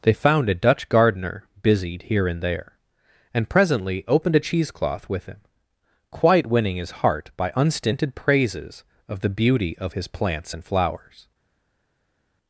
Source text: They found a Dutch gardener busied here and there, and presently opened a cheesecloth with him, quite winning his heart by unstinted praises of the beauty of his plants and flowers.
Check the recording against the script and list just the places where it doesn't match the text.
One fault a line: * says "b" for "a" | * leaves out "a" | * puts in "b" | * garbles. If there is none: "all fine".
all fine